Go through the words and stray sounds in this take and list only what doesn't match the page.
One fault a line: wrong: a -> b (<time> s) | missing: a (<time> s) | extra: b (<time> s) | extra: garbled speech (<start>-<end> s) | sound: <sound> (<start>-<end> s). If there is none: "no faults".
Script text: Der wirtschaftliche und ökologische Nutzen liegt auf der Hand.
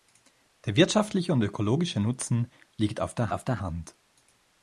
extra: auf der (3.3 s)